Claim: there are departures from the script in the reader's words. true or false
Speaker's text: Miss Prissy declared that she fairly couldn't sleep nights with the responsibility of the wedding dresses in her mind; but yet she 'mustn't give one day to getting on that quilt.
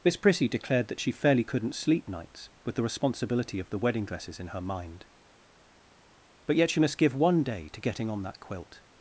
true